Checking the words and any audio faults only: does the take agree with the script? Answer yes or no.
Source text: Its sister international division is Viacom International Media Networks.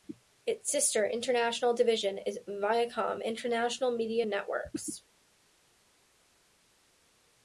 yes